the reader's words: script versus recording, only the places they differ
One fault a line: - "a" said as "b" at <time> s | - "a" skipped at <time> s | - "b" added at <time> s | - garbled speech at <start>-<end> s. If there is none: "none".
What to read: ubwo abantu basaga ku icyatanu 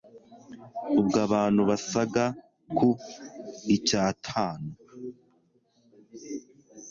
none